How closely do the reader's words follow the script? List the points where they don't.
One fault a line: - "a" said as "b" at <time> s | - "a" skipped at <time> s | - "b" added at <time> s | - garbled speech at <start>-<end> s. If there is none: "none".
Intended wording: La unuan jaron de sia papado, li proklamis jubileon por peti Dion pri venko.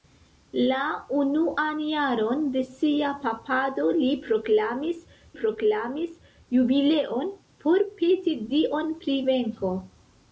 - "proklamis" added at 5.4 s